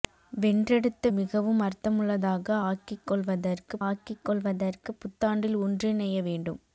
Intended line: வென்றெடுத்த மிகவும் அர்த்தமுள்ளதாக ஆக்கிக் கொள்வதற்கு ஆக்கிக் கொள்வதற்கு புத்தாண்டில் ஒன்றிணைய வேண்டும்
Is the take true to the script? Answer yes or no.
yes